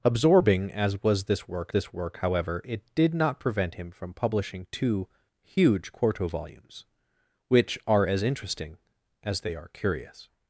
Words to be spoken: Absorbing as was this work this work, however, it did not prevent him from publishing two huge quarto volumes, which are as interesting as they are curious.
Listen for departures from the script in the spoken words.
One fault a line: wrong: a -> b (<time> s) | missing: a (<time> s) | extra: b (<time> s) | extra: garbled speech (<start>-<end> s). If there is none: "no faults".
no faults